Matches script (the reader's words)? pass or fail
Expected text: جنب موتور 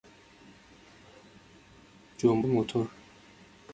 pass